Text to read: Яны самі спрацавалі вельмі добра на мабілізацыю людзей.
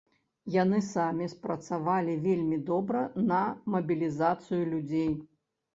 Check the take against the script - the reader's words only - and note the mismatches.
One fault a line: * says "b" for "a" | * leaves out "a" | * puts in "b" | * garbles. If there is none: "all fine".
all fine